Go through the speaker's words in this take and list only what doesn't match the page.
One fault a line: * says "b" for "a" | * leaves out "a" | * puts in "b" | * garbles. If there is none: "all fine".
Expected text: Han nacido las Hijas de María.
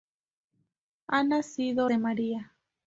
* leaves out "las Hijas"